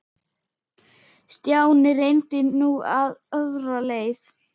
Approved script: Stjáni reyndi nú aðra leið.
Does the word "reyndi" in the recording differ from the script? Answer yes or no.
no